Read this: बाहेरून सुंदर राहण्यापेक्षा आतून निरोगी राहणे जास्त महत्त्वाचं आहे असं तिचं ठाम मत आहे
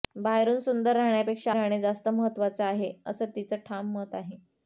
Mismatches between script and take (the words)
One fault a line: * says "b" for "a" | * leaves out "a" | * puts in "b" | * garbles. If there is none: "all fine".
* leaves out "आतून निरोगी"